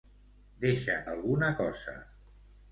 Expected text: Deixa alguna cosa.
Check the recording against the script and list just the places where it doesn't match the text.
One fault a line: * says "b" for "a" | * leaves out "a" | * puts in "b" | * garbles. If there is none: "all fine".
all fine